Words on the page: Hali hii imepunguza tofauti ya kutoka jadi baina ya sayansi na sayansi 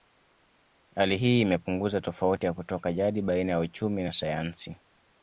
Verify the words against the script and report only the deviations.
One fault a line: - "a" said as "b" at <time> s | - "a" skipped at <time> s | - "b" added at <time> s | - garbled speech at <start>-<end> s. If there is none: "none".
- "sayansi" said as "uchumi" at 3.6 s